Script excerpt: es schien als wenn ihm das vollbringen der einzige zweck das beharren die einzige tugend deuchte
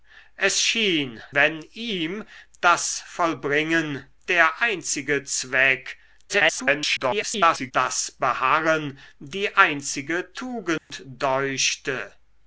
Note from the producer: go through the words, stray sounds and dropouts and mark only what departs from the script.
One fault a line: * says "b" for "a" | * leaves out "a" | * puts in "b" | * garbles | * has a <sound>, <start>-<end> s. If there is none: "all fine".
* leaves out "als"
* garbles
* has a dropout, 10.8-10.9 s